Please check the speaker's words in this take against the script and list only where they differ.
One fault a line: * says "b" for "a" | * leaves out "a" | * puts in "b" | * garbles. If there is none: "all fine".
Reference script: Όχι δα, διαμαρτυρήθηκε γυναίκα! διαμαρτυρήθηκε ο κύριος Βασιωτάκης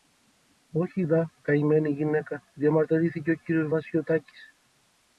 * says "καημένη" for "διαμαρτυρήθηκε"